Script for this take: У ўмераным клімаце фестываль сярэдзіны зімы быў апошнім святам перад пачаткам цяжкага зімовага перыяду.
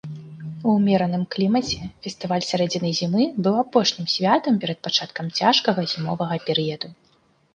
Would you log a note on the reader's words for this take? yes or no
no